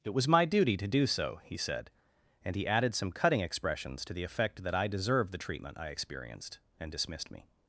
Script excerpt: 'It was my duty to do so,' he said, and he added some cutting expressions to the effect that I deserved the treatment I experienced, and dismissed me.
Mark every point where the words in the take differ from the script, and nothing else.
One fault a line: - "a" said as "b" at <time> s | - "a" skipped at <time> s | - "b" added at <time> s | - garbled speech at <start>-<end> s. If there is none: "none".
none